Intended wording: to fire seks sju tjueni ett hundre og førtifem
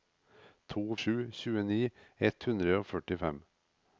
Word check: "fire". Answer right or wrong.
wrong